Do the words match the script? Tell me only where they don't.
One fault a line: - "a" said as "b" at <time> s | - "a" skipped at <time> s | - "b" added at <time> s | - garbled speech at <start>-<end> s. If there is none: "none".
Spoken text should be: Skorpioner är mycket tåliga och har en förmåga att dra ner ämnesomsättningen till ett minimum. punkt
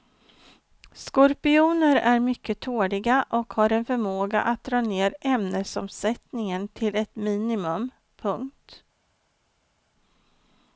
none